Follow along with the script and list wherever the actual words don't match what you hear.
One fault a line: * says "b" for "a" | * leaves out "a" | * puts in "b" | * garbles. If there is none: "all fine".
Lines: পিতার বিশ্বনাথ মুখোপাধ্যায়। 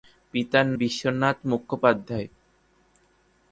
all fine